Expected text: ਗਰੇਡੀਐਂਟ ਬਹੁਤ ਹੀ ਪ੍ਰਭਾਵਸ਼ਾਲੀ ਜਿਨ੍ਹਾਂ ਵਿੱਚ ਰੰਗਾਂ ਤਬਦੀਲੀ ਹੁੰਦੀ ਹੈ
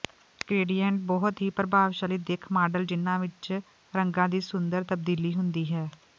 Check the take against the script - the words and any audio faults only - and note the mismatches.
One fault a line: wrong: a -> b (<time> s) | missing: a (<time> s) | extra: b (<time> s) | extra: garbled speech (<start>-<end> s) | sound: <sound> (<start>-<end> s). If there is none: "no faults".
extra: ਦਿੱਖ ਮਾਡਲ (2.2 s)
extra: ਦੀ ਸੁੰਦਰ (4.3 s)